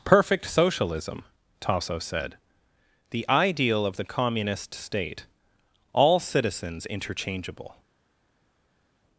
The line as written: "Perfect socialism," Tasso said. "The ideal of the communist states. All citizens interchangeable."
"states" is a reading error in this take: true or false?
true